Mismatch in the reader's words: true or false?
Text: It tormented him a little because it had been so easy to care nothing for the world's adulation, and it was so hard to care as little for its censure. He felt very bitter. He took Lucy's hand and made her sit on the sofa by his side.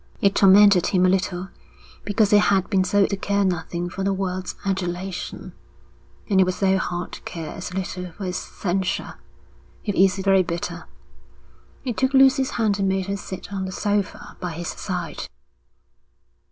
true